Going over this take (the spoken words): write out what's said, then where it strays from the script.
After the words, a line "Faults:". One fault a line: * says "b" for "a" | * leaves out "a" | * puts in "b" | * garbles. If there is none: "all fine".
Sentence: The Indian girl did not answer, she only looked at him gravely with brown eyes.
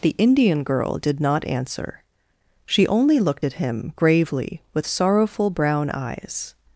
The Indian girl did not answer, she only looked at him gravely with sorrowful brown eyes.
Faults:
* puts in "sorrowful"